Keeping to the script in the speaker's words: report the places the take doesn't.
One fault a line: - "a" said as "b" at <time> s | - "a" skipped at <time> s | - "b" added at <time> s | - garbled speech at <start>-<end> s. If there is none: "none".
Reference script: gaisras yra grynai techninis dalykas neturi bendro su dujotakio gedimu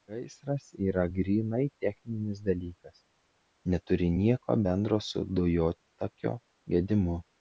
- "nieko" added at 4.2 s